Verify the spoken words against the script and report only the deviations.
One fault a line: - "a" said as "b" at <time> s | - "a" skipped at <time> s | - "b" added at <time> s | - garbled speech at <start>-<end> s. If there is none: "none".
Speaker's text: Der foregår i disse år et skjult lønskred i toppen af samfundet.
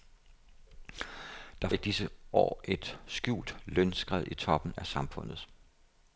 - "foregår" skipped at 1.7 s